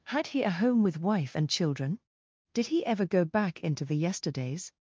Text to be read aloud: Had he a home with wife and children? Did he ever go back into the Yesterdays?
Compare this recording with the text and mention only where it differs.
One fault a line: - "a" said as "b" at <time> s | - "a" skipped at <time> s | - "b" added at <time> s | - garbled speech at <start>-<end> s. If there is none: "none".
none